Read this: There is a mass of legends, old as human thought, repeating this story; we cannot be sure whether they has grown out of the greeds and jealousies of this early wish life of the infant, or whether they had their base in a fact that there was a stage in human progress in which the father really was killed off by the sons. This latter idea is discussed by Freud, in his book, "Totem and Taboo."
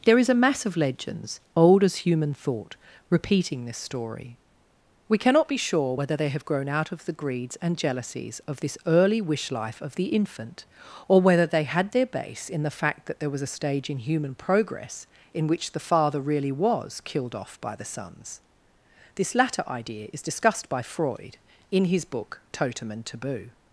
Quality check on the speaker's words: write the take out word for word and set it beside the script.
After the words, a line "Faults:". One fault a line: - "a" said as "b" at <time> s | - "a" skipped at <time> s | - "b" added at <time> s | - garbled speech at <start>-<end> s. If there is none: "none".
There is a mass of legends, old as human thought, repeating this story; we cannot be sure whether they have grown out of the greeds and jealousies of this early wish life of the infant, or whether they had their base in the fact that there was a stage in human progress in which the father really was killed off by the sons. This latter idea is discussed by Freud, in his book, "Totem and Taboo."
Faults:
- "has" said as "have" at 6.3 s
- "a" said as "the" at 12.6 s